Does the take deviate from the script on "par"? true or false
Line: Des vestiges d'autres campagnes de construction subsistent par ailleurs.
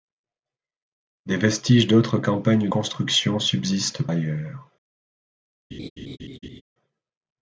true